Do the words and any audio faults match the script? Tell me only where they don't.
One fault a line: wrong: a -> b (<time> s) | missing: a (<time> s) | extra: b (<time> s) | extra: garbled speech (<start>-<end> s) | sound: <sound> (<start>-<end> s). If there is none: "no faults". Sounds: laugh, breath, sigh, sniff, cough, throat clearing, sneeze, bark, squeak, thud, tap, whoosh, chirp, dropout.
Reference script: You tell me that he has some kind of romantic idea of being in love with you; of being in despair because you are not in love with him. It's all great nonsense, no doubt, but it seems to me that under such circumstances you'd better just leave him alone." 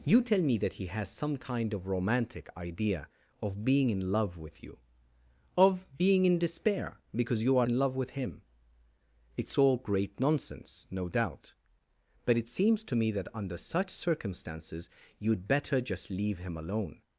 missing: not (7.7 s)